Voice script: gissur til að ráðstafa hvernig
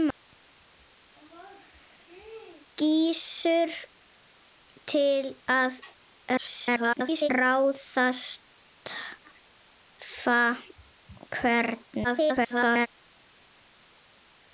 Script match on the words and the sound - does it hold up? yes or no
no